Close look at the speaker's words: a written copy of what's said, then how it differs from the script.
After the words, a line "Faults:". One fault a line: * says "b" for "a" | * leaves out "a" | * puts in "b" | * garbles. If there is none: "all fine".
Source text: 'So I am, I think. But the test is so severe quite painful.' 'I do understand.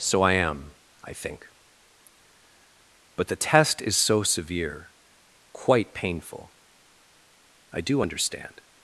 'So I am, I think. But the test is so severe quite painful.' 'I do understand.
Faults:
all fine